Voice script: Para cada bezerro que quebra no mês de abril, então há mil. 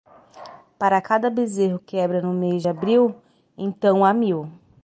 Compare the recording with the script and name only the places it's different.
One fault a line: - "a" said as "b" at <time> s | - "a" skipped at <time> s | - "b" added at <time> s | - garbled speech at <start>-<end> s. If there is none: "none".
- "que" skipped at 1.8 s
- "de" skipped at 2.6 s